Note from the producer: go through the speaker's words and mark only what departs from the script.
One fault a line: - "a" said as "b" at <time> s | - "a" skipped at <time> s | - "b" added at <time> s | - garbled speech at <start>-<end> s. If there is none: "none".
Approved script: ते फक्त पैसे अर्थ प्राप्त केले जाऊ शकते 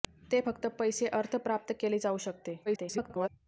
- garbled speech at 2.7-3.3 s